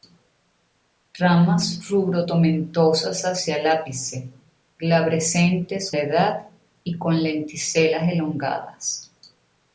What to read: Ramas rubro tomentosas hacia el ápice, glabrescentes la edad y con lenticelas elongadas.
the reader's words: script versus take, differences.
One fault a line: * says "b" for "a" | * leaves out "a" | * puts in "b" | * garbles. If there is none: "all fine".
all fine